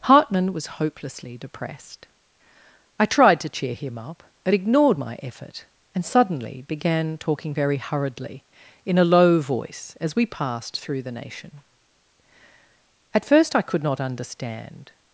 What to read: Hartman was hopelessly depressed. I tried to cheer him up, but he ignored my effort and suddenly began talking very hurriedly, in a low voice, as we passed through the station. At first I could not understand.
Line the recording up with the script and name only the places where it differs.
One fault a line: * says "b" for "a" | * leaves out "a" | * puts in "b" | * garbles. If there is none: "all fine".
* leaves out "he"
* says "nation" for "station"